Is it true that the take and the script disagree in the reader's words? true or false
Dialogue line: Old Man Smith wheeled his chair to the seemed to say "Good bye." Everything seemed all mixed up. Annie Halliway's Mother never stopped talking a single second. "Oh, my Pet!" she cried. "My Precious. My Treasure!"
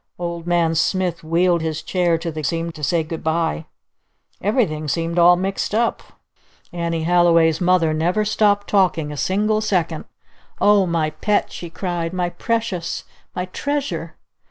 false